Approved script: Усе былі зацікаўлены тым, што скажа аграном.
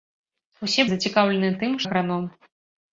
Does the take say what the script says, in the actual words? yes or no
no